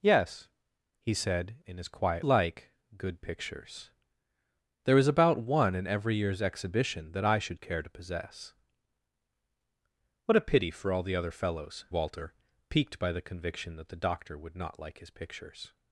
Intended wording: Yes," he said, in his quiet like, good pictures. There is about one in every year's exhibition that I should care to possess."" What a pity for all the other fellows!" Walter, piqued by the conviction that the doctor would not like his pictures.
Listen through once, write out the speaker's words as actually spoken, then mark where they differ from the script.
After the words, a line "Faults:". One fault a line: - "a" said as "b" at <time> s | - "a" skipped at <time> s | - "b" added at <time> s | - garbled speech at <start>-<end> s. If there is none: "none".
Yes," he said, in his quiet like, good pictures. There is about one in every year's exhibition that I should care to possess."" What a pity for all the other fellows!" Walter, piqued by the conviction that the doctor would not like his pictures.
Faults:
none